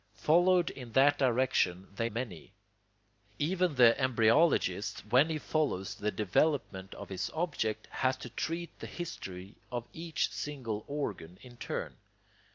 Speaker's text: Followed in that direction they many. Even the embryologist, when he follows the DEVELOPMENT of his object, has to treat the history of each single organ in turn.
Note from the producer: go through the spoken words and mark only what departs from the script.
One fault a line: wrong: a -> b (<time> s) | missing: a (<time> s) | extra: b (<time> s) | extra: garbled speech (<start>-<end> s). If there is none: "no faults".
no faults